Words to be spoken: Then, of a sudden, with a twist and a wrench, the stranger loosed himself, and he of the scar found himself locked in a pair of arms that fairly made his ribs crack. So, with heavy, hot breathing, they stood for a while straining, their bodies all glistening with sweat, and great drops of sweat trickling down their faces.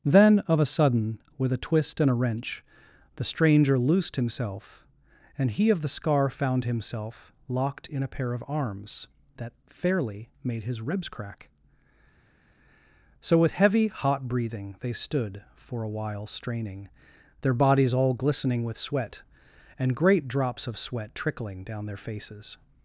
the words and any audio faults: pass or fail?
pass